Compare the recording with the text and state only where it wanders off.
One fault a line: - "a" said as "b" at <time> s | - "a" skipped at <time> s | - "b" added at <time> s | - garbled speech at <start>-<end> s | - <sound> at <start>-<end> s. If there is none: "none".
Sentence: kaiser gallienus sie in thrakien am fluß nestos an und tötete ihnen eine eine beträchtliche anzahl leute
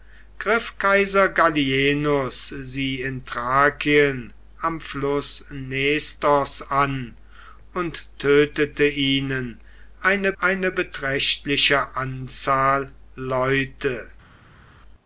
none